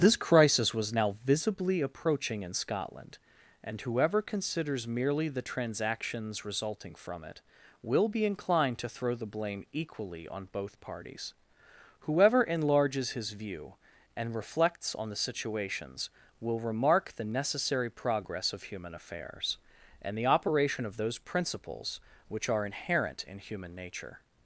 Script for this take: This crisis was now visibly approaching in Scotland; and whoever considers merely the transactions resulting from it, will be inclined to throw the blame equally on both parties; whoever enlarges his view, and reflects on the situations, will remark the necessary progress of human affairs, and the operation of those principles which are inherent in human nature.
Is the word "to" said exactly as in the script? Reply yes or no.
yes